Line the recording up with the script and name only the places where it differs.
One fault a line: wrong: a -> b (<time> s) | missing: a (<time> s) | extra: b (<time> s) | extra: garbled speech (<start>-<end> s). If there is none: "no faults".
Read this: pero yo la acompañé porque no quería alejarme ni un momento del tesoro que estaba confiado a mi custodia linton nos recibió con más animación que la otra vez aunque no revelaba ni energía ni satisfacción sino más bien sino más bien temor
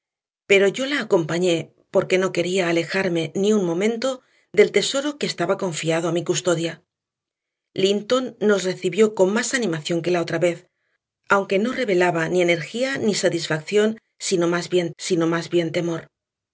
no faults